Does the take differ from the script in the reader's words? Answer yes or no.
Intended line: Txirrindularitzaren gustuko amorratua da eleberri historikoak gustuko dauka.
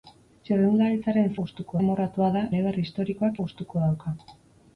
no